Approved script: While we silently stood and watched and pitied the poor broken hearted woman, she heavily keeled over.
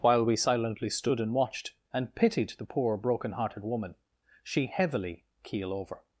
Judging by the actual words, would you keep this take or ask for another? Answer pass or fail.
fail